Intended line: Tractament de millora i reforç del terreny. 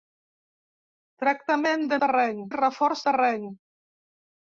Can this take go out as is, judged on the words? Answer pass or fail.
fail